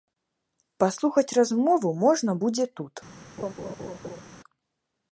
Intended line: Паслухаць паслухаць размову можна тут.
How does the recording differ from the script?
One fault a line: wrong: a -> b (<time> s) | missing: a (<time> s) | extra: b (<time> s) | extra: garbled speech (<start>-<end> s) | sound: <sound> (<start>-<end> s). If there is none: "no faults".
missing: паслухаць (1.4 s)
extra: будзе (2.4 s)
sound: laugh (3.4-4.2 s)